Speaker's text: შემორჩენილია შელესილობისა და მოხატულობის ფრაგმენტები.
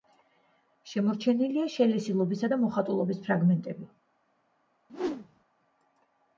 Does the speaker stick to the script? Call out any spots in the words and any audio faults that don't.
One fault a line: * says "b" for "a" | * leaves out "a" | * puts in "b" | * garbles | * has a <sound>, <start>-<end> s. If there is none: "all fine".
* has a whoosh, 4.9-5.4 s